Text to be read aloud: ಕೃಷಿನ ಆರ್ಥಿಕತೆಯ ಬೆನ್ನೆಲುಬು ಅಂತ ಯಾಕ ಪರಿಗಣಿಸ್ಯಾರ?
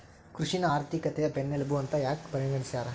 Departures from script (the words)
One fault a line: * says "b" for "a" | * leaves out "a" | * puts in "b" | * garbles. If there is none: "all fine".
all fine